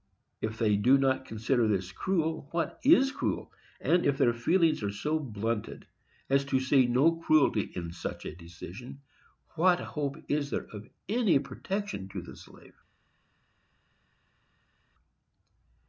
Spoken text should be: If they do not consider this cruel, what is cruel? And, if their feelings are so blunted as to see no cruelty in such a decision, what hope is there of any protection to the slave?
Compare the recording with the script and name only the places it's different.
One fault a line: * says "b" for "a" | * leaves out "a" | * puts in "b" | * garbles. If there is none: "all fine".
all fine